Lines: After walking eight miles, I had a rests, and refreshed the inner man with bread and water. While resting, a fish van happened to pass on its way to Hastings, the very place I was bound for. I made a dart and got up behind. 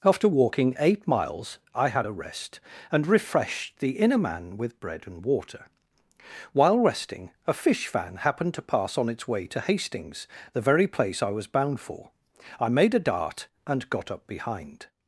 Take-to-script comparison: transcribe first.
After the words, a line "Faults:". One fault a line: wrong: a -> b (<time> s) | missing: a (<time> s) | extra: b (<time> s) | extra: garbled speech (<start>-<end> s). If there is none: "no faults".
After walking eight miles, I had a rest, and refreshed the inner man with bread and water. While resting, a fish van happened to pass on its way to Hastings, the very place I was bound for. I made a dart and got up behind.
Faults:
wrong: rests -> rest (2.1 s)